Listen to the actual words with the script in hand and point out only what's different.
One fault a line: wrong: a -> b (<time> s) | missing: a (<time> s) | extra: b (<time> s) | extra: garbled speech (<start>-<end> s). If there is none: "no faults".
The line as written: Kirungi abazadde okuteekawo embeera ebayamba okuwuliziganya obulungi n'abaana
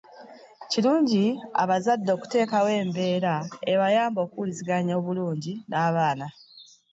no faults